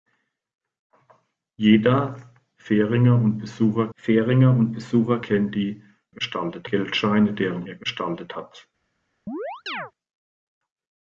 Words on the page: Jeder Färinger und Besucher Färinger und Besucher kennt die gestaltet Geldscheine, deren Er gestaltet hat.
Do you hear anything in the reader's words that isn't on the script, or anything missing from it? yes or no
no